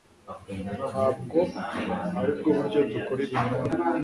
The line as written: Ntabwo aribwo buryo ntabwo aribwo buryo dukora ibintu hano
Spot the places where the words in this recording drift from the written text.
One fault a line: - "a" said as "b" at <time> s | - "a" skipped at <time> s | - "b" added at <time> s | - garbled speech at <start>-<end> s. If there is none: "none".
- "ntabwo aribwo buryo" skipped at 2.8 s